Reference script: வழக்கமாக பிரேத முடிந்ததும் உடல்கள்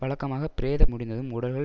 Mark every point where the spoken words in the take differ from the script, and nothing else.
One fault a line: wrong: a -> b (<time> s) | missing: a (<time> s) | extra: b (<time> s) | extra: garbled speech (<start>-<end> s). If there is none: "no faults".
no faults